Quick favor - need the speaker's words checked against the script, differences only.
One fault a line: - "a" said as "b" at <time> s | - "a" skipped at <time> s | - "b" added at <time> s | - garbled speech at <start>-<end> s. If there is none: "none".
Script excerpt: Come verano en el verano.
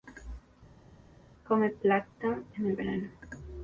- "verano" said as "plancton" at 1.7 s